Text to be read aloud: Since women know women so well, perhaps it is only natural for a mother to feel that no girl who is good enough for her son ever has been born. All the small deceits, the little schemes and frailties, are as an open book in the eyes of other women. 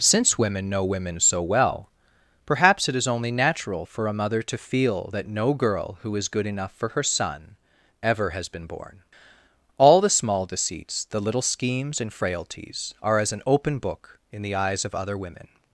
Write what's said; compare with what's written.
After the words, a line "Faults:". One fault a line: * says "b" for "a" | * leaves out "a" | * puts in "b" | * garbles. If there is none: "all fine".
Since women know women so well, perhaps it is only natural for a mother to feel that no girl who is good enough for her son ever has been born. All the small deceits, the little schemes and frailties, are as an open book in the eyes of other women.
Faults:
all fine